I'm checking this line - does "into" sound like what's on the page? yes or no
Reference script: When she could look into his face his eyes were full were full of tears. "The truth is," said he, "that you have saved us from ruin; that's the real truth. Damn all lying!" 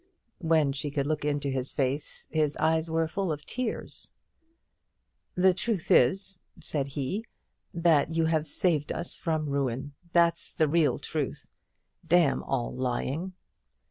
yes